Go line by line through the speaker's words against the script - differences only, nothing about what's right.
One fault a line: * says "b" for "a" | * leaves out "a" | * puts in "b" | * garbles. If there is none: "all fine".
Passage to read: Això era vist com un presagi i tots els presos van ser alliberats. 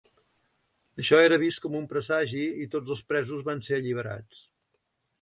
all fine